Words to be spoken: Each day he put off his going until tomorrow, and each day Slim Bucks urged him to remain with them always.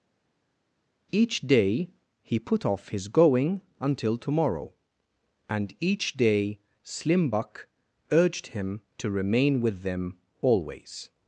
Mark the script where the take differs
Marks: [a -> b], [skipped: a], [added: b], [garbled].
Each day he put off his going until tomorrow, and each day Slim [Bucks -> Buck] urged him to remain with them always.